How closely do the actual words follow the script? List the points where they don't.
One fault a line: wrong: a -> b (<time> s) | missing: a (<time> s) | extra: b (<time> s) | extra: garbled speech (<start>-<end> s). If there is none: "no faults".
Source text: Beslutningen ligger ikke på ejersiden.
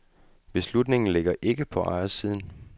no faults